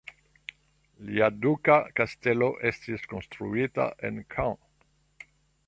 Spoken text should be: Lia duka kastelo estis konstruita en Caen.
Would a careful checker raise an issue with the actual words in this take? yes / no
no